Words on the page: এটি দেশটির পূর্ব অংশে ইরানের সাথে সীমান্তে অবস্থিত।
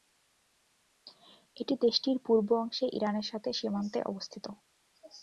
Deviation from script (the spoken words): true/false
false